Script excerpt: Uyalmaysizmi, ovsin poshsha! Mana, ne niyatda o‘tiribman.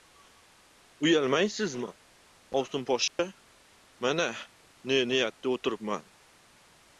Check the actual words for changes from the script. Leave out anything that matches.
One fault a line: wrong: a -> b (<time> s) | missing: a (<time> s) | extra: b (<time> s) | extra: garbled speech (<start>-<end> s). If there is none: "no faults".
no faults